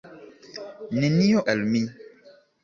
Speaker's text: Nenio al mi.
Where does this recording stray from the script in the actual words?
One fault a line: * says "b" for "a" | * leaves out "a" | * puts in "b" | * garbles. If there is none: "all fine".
all fine